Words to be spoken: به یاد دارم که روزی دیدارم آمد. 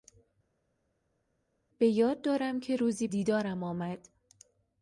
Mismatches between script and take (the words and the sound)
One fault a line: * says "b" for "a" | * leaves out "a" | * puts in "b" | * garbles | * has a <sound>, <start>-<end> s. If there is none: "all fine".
all fine